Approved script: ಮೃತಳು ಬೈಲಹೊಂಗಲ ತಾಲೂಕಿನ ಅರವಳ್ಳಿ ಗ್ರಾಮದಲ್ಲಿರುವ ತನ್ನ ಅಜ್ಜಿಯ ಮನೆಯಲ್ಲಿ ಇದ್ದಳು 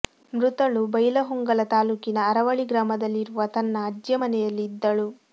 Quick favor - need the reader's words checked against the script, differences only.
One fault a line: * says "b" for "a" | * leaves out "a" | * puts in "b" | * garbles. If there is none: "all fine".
all fine